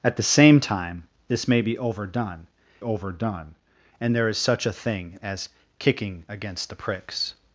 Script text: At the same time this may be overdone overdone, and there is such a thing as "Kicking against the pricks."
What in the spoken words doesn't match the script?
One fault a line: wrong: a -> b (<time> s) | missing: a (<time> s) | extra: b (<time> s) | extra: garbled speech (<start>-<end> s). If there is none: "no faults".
no faults